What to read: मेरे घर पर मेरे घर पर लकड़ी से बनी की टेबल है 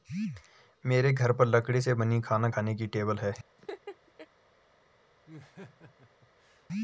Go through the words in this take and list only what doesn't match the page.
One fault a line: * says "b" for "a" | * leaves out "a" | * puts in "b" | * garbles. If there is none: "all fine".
* leaves out "मेरे घर पर"
* puts in "खाना खाने"